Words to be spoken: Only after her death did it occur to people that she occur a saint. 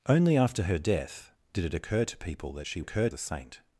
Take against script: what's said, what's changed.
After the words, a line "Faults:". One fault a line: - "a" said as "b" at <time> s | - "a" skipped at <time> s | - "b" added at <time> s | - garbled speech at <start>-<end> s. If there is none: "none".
Only after her death did it occur to people that she occur a saint.
Faults:
none